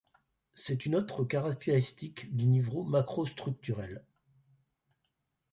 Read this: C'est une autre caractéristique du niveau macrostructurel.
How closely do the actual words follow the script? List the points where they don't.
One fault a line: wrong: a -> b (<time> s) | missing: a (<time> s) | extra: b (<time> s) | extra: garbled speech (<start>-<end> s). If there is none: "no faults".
no faults